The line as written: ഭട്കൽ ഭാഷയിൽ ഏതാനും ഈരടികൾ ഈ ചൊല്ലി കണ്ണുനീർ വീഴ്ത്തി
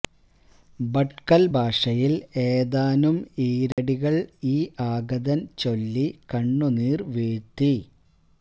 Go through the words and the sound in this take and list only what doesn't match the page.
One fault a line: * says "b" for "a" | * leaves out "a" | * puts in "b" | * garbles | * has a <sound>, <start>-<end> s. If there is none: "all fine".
* has a dropout, 3.7-3.8 s
* puts in "ആഗതൻ"